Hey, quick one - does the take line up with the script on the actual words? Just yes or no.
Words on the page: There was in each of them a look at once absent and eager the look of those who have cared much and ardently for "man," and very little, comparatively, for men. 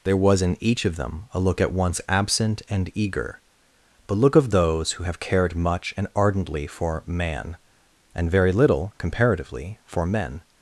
yes